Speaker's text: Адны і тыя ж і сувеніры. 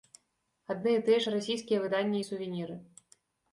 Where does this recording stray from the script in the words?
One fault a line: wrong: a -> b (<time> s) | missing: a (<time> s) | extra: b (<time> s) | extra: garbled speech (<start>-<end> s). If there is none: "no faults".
extra: расійскія выданні (1.3 s)